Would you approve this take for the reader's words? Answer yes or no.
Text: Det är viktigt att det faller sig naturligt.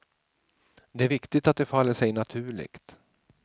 yes